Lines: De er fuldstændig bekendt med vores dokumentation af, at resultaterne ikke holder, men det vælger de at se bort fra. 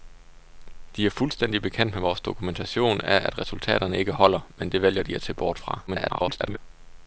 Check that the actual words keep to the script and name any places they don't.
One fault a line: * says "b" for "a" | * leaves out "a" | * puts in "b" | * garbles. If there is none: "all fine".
* garbles